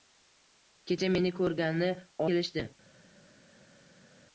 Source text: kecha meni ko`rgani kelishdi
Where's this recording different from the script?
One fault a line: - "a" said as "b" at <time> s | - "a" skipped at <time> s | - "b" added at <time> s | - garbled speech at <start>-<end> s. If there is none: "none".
none